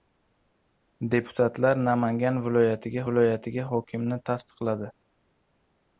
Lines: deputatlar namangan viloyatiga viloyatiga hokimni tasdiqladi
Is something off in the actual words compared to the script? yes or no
no